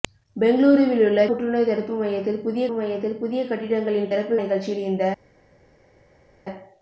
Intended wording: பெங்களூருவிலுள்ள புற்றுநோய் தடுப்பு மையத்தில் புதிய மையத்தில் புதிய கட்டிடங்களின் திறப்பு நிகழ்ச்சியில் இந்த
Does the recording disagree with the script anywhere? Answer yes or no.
no